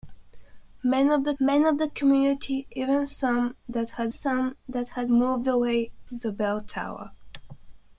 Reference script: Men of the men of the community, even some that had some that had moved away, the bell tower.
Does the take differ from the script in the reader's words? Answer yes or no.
no